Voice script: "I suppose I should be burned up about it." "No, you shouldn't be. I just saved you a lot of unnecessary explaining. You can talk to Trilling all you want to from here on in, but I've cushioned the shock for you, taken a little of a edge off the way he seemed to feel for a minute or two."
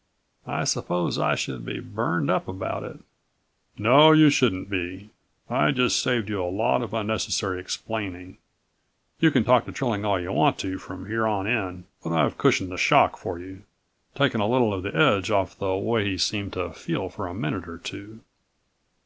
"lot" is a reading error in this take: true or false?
false